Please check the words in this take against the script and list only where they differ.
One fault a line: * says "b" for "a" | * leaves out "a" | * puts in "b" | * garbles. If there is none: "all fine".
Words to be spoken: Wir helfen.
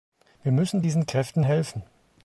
* puts in "müssen diesen Kräften"